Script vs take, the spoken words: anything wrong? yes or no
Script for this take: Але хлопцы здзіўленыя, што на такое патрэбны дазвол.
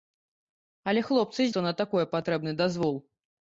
yes